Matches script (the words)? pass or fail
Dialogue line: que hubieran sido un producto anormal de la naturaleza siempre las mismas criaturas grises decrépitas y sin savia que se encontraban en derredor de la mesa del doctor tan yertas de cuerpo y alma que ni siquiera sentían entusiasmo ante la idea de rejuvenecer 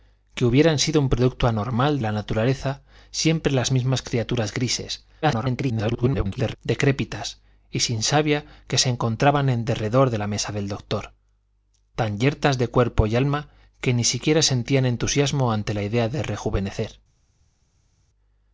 fail